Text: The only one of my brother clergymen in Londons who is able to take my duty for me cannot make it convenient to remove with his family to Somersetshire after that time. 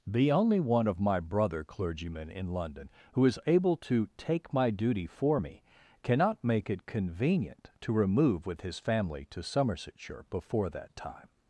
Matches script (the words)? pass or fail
fail